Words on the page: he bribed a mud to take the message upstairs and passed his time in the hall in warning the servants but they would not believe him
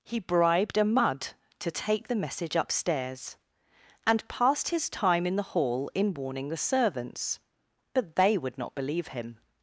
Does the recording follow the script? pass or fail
pass